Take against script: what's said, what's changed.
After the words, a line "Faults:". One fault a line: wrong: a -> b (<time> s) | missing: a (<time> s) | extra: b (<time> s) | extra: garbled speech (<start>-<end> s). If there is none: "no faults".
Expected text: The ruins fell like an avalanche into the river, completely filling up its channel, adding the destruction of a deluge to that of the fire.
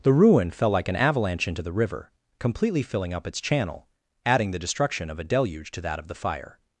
The ruin fell like an avalanche into the river, completely filling up its channel, adding the destruction of a deluge to that of the fire.
Faults:
wrong: ruins -> ruin (0.1 s)